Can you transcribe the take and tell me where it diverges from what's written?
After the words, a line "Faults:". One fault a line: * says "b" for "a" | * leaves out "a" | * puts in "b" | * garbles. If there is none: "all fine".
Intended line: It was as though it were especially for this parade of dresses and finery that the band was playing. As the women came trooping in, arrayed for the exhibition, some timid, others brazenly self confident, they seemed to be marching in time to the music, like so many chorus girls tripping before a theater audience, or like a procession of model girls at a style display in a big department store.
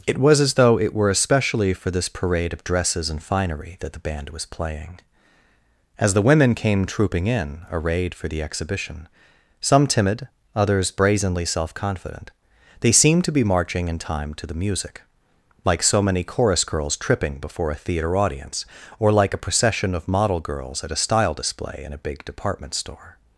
It was as though it were especially for this parade of dresses and finery that the band was playing. As the women came trooping in, arrayed for the exhibition, some timid, others brazenly self confident, they seemed to be marching in time to the music, like so many chorus girls tripping before a theater audience, or like a procession of model girls at a style display in a big department store.
Faults:
all fine